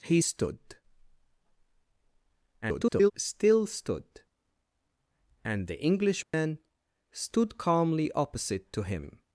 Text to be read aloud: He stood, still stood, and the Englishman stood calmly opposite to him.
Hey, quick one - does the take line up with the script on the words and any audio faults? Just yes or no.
no